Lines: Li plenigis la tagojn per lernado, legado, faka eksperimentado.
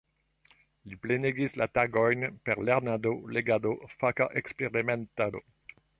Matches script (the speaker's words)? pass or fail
pass